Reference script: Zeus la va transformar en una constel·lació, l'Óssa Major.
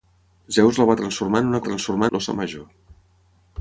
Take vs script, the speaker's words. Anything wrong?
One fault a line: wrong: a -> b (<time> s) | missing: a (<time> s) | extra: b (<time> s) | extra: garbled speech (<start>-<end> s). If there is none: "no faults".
wrong: constel·lació -> transformar (1.7 s)